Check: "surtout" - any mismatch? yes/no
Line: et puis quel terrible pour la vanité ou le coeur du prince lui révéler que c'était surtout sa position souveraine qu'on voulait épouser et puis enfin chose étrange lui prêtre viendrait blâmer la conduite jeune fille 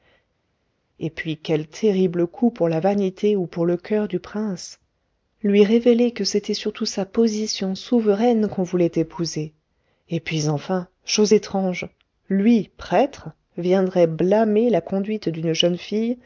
no